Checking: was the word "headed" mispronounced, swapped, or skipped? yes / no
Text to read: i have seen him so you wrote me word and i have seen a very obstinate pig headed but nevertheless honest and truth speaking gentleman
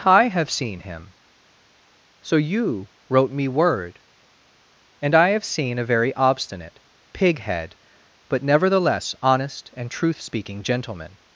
yes